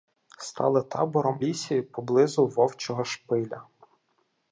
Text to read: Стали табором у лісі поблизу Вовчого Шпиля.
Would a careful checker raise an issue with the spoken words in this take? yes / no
yes